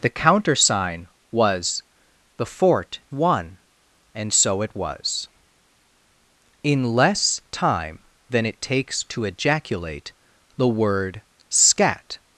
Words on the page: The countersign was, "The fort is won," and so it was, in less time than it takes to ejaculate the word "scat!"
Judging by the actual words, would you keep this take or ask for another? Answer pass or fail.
fail